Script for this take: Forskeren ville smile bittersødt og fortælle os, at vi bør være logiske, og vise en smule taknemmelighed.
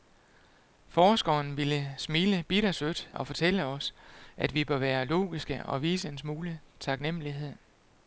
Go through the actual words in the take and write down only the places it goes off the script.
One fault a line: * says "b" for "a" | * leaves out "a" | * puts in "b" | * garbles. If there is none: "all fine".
all fine